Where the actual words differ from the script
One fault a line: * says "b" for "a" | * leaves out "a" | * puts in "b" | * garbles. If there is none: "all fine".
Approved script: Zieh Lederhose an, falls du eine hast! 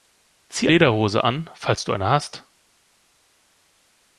all fine